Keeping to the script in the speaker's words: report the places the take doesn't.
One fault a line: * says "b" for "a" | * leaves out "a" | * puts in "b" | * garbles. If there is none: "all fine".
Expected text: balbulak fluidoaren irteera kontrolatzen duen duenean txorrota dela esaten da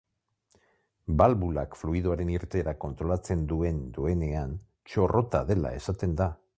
all fine